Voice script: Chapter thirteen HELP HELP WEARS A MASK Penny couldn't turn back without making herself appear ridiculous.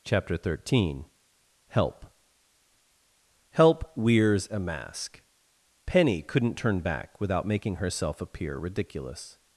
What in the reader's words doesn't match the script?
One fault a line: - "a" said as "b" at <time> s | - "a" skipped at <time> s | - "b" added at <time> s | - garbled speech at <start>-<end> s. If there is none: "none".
none